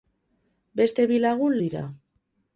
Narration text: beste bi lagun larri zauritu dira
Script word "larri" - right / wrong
wrong